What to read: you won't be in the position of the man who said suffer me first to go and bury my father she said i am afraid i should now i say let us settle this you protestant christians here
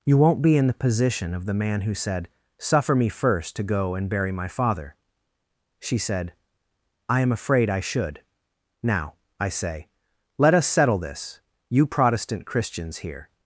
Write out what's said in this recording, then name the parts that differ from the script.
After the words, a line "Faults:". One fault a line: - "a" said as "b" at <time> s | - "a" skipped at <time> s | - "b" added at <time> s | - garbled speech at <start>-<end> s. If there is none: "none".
you won't be in the position of the man who said suffer me first to go and bury my father she said i am afraid i should now i say let us settle this you protestant christians here
Faults:
none